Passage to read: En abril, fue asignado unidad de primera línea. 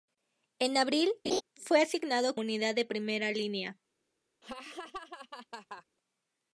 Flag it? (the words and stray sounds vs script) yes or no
yes